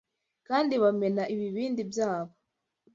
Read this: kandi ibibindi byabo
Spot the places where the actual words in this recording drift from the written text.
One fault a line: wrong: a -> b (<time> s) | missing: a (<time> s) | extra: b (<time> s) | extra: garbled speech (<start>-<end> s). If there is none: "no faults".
extra: bamena (0.8 s)